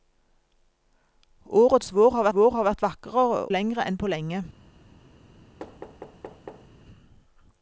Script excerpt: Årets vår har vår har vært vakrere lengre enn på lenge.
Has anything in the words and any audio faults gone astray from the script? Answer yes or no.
yes